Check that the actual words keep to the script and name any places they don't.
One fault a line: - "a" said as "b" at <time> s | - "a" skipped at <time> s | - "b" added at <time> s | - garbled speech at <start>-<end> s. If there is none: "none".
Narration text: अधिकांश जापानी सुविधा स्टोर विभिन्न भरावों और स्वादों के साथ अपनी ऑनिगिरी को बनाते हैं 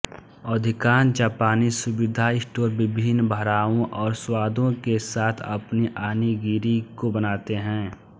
none